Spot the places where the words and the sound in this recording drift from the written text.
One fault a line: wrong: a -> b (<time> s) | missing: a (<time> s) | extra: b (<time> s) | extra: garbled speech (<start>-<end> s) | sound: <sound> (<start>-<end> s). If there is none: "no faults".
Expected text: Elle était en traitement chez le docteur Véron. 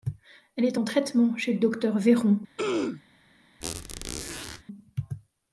wrong: était -> est (0.7 s)
sound: throat clearing (2.6-3.0 s)
sound: squeak (3.6-4.6 s)